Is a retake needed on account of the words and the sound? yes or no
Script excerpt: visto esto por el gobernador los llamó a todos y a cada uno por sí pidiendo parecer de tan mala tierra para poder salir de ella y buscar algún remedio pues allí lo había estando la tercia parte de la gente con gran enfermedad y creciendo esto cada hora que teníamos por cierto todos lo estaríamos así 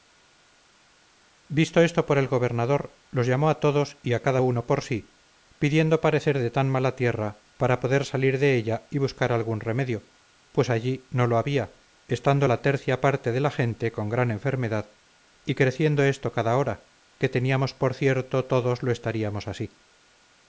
yes